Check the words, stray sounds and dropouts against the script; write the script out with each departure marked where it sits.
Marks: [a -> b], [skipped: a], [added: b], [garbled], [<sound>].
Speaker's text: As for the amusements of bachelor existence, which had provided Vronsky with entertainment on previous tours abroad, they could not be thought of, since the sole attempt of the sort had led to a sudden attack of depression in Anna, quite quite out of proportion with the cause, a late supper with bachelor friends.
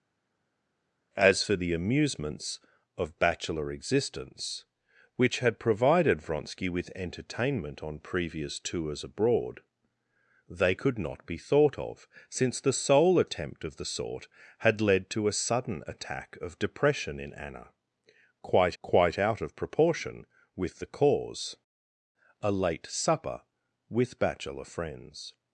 As for the amusements of bachelor existence, which had provided Vronsky with entertainment on previous tours abroad, they could not be thought of, since the sole attempt of the sort had led to a sudden attack of depression in Anna, quite quite out of proportion with the cause, a late supper with bachelor friends.